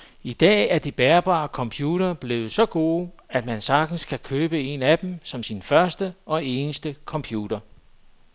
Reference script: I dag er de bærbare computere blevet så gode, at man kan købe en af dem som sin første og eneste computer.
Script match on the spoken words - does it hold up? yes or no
no